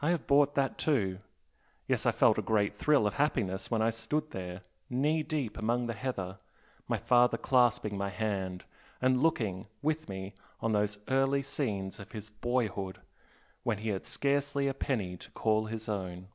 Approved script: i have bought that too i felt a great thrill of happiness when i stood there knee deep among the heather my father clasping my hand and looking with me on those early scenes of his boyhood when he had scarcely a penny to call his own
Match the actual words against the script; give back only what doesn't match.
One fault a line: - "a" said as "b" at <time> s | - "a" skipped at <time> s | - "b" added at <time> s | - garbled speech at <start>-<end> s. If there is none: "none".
- "yes" added at 1.9 s